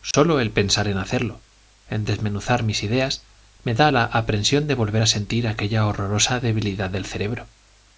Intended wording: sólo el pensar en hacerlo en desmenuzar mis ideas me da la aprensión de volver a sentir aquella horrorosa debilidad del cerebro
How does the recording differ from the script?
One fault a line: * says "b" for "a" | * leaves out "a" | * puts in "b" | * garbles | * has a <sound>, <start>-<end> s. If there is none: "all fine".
* has a dropout, 0.1-0.1 s